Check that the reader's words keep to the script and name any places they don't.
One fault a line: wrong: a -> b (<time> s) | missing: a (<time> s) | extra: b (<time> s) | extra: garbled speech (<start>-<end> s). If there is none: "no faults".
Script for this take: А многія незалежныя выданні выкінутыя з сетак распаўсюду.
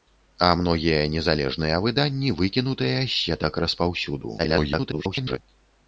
extra: garbled speech (4.4-5.4 s)